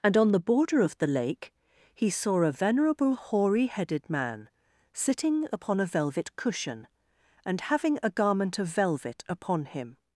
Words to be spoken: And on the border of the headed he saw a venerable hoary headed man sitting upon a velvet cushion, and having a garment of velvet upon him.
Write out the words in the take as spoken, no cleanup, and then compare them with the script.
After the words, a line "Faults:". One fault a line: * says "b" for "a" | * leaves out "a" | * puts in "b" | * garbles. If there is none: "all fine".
And on the border of the lake he saw a venerable hoary headed man sitting upon a velvet cushion, and having a garment of velvet upon him.
Faults:
* says "lake" for "headed"